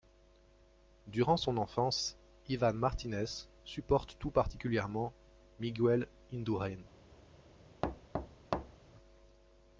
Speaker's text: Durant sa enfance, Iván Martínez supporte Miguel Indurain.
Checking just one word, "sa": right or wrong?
wrong